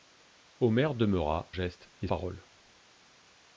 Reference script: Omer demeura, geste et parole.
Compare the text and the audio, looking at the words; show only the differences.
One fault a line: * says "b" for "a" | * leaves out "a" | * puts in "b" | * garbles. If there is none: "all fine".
all fine